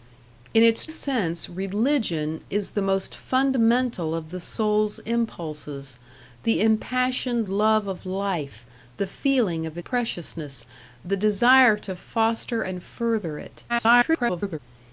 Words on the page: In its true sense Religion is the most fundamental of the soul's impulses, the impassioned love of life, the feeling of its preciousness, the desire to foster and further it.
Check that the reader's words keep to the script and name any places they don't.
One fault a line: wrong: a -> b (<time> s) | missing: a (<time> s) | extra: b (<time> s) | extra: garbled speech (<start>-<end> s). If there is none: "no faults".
missing: true (0.9 s)
missing: its (9.8 s)
extra: garbled speech (13.7-14.6 s)